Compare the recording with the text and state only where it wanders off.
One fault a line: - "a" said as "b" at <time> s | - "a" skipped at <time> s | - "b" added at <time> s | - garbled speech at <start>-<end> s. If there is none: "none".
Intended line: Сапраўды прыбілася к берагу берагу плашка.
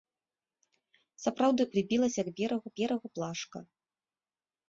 none